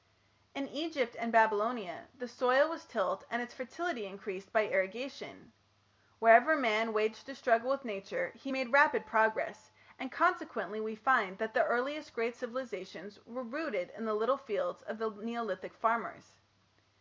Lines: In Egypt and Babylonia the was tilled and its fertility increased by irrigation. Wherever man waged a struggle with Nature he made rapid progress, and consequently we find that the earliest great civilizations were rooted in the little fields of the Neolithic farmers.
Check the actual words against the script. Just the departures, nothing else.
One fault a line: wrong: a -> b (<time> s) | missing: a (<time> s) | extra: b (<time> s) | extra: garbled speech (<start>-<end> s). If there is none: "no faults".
extra: soil (2.3 s)